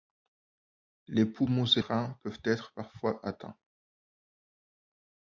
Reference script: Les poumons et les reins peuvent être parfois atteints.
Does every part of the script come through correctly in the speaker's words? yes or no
no